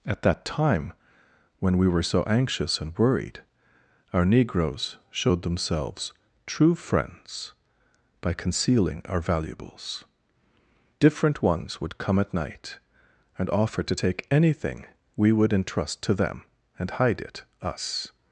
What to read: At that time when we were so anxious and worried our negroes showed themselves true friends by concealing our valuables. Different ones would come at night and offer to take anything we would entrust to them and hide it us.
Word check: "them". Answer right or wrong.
right